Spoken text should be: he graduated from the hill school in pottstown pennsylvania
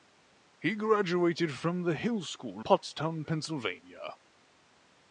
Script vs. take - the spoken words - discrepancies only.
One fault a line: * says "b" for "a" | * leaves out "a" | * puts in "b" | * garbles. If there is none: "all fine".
* leaves out "in"